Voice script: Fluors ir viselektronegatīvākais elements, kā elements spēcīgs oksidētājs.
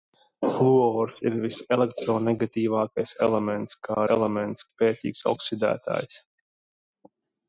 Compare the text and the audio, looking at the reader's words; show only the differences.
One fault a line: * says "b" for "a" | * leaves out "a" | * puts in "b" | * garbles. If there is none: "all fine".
all fine